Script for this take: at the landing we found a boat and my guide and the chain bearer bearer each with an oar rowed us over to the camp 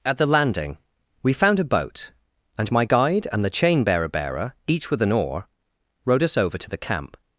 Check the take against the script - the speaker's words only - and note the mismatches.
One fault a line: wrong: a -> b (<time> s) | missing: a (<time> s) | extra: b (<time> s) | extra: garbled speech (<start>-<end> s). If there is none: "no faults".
no faults